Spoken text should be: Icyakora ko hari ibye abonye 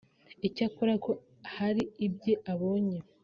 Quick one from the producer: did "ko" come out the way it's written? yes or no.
yes